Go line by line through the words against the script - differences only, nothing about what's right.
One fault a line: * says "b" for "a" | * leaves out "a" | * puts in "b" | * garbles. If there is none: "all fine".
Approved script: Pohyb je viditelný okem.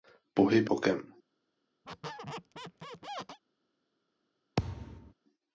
* leaves out "je viditelný"